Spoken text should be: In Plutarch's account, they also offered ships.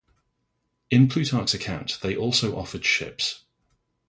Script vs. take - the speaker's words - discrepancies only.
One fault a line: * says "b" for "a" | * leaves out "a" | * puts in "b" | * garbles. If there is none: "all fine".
all fine